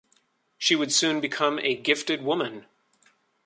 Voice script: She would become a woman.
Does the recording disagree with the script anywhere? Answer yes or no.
yes